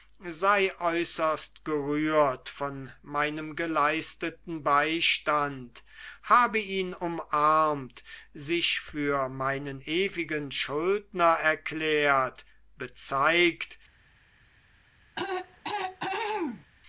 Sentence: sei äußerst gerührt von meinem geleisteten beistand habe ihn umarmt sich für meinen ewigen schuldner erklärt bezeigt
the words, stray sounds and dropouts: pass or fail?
fail